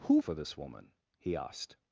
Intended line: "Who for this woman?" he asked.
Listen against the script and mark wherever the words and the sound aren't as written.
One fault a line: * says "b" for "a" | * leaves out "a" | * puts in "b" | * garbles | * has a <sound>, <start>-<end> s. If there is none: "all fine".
all fine